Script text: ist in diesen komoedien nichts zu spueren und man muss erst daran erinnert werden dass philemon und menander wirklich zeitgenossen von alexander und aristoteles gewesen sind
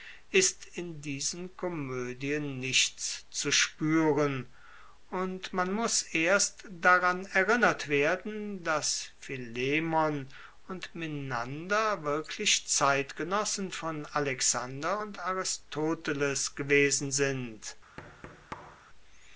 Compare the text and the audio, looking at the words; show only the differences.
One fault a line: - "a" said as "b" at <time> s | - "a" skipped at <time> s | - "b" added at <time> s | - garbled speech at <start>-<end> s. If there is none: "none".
none